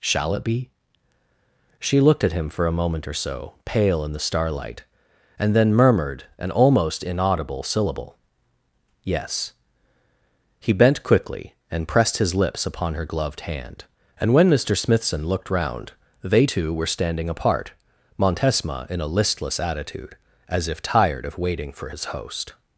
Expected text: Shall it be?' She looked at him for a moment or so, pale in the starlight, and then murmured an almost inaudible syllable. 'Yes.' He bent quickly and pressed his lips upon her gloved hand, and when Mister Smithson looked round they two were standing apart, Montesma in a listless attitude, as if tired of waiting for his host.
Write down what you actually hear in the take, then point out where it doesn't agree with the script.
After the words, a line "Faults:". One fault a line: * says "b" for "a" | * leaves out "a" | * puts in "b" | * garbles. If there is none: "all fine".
Shall it be?' She looked at him for a moment or so, pale in the starlight, and then murmured an almost inaudible syllable. 'Yes.' He bent quickly and pressed his lips upon her gloved hand, and when Mister Smithson looked round they two were standing apart, Montesma in a listless attitude, as if tired of waiting for his host.
Faults:
all fine